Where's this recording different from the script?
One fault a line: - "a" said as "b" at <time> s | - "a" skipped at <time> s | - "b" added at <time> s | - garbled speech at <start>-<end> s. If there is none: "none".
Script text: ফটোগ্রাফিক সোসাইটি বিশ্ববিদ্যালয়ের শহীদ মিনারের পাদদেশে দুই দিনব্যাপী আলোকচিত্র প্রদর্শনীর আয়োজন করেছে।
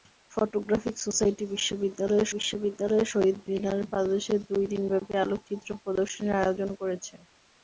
- "বিশ্ববিদ্যালয়ের" added at 2.4 s